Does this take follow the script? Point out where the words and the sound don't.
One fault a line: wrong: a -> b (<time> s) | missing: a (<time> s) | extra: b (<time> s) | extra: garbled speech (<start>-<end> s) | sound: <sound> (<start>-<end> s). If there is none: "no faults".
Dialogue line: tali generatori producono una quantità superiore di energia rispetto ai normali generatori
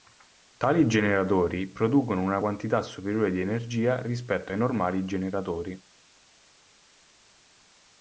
no faults